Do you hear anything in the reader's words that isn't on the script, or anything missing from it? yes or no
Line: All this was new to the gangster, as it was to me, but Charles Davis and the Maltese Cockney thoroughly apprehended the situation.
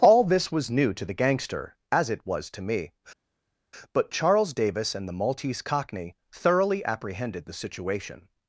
no